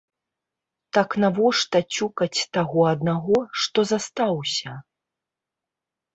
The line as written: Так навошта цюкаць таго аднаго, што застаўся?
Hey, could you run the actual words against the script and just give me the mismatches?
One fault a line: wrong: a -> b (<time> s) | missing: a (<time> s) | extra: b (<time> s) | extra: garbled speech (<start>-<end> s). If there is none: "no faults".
no faults